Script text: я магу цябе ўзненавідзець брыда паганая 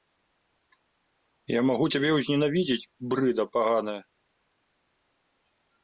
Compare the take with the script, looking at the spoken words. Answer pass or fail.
pass